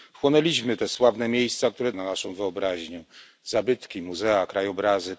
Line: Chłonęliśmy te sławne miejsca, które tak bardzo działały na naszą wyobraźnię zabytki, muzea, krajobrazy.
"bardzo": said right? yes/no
no